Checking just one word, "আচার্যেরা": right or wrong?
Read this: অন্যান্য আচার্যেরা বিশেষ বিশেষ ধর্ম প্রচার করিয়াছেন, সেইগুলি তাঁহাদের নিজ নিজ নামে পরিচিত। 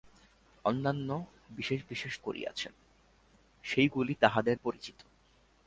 wrong